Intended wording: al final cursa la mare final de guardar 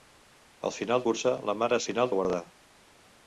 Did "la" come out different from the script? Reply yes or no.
no